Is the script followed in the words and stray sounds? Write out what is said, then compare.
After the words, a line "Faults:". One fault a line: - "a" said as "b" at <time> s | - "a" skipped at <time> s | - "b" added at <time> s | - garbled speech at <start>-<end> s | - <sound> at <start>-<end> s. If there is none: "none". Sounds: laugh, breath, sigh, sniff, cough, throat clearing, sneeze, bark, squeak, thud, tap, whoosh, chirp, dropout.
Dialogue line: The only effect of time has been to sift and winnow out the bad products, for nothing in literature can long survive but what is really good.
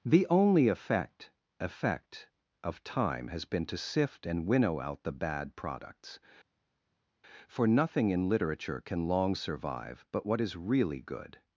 The only effect effect of time has been to sift and winnow out the bad products, for nothing in literature can long survive but what is really good.
Faults:
- "effect" added at 1.6 s